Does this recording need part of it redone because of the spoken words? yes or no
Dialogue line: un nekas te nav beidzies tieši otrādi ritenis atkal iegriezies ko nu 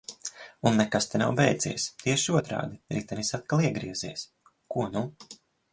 no